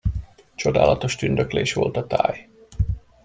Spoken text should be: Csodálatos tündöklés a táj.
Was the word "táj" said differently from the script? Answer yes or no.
no